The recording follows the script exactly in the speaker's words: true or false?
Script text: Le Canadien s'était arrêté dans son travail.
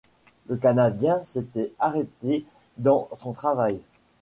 true